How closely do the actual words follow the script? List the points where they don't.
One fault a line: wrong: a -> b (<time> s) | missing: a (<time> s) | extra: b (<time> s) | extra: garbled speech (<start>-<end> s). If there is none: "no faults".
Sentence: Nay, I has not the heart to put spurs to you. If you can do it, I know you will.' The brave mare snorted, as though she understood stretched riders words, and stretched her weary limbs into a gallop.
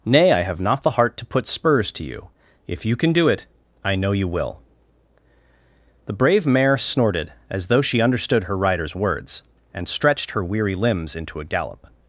wrong: has -> have (0.4 s)
wrong: stretched -> her (8.5 s)